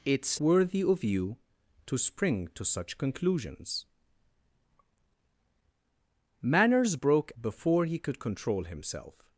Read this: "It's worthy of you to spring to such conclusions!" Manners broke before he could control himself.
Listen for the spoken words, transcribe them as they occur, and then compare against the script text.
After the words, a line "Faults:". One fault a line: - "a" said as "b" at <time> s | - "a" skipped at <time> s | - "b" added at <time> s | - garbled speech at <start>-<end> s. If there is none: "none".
"It's worthy of you to spring to such conclusions!" Manners broke before he could control himself.
Faults:
none